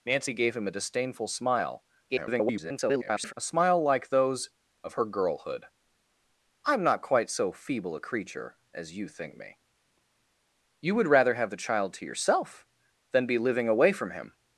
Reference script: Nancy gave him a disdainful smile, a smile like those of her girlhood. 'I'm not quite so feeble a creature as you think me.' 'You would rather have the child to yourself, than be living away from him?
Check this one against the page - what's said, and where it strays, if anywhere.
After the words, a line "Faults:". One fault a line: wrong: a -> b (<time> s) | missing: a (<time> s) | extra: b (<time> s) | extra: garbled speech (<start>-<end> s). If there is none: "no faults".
Nancy gave him a disdainful smile, [garbled] a smile like those of her girlhood. 'I'm not quite so feeble a creature as you think me.' 'You would rather have the child to yourself, than be living away from him?
Faults:
extra: garbled speech (2.1-3.3 s)